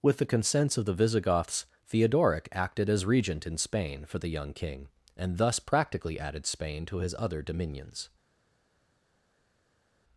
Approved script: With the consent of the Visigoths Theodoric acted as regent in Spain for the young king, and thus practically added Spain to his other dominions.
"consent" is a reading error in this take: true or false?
true